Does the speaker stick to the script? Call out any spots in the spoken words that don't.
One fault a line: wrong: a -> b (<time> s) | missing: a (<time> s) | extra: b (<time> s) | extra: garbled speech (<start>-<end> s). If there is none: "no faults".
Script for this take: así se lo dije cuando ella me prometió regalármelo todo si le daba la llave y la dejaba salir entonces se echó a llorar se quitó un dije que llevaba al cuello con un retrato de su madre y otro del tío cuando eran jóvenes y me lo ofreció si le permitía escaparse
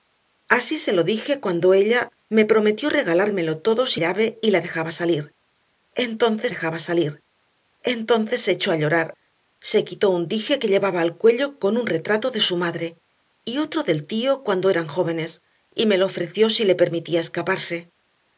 wrong: le daba -> llave y (3.9 s)
wrong: llave y la -> dejaba salir entonces (4.6 s)